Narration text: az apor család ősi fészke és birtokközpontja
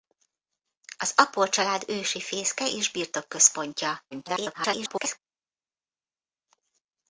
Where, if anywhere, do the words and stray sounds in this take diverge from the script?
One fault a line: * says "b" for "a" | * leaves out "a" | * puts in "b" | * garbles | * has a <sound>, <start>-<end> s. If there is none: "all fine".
* garbles